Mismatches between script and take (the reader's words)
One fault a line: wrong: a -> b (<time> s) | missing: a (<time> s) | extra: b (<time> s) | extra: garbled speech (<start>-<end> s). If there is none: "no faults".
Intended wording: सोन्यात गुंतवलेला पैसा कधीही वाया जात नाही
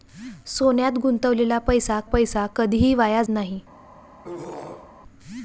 extra: पैसा (2.0 s)
missing: जात (3.2 s)